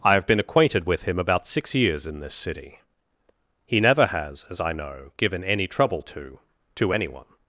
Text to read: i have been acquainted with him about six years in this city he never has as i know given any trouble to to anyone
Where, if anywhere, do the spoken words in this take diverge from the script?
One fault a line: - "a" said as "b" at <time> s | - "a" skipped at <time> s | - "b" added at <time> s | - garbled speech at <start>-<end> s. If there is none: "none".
none